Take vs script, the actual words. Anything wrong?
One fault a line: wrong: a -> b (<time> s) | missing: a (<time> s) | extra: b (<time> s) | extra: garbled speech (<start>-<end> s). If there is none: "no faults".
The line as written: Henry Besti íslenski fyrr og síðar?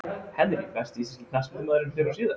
extra: knattspyrnumaðurinn (1.3 s)